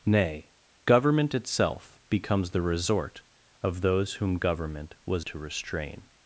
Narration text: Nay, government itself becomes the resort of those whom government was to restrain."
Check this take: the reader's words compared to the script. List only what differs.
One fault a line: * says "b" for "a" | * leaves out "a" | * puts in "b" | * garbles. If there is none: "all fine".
all fine